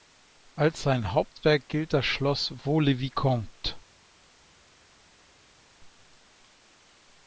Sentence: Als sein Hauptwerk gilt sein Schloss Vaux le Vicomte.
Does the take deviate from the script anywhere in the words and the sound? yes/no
yes